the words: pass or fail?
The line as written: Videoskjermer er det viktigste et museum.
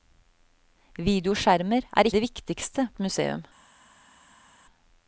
pass